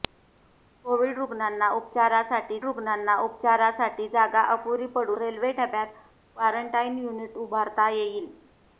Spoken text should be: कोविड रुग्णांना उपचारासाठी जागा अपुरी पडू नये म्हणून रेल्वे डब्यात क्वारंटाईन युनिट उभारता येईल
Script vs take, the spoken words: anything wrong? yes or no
yes